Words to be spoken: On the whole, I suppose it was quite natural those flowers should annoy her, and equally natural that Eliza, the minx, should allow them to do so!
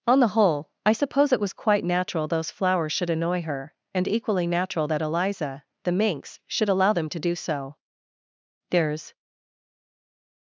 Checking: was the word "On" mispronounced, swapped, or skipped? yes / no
no